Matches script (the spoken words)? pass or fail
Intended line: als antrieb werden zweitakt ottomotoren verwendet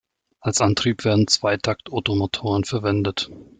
pass